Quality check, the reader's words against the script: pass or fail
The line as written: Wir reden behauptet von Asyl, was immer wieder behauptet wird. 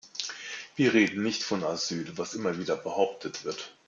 fail